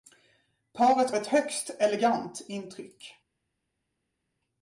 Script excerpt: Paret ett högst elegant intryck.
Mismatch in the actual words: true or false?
false